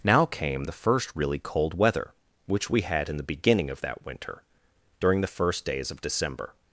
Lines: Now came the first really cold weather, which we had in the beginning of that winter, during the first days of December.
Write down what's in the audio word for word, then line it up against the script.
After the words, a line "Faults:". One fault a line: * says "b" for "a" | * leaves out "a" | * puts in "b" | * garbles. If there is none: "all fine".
Now came the first really cold weather, which we had in the beginning of that winter, during the first days of December.
Faults:
all fine